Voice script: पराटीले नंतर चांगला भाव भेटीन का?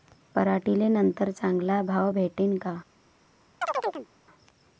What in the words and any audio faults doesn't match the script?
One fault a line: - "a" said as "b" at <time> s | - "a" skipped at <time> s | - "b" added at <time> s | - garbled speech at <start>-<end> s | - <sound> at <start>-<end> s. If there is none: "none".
- chirp at 3.6-4.1 s